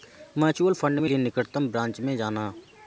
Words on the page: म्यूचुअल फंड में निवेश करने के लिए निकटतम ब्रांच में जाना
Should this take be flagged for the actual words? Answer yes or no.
yes